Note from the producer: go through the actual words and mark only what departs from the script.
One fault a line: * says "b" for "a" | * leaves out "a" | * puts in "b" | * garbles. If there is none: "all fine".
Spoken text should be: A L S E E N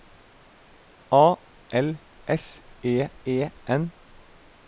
all fine